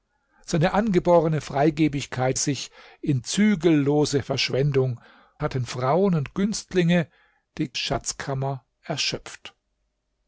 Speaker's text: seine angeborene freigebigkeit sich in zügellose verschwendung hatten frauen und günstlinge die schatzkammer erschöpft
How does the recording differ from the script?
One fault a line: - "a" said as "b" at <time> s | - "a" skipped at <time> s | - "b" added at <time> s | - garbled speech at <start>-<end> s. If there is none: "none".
none